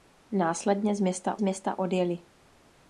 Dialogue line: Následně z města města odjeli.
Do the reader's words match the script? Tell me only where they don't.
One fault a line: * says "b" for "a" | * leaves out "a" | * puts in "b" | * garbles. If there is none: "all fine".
all fine